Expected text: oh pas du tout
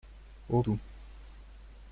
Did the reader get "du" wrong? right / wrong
wrong